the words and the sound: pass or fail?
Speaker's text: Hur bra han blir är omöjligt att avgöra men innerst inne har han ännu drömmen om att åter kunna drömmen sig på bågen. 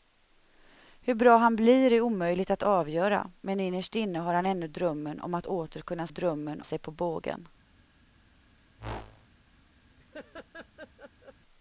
fail